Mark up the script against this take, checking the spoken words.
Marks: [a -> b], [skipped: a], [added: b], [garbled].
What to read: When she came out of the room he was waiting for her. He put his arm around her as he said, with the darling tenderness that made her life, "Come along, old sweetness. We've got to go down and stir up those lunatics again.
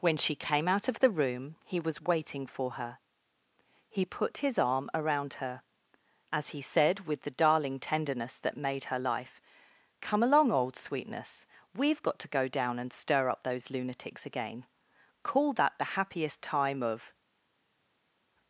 When she came out of the room he was waiting for her. He put his arm around her as he said, with the darling tenderness that made her life, "Come along, old sweetness. We've got to go down and stir up those lunatics again. [added: Call that the happiest time of]